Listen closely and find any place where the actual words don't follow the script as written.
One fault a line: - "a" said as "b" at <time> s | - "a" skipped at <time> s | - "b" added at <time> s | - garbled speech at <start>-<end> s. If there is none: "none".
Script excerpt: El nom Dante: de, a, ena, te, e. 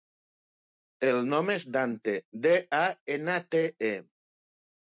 - "és" added at 1.6 s